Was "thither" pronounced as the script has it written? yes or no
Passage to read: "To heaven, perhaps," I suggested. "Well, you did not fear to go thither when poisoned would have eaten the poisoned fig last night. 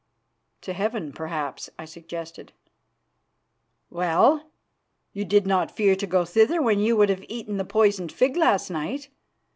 yes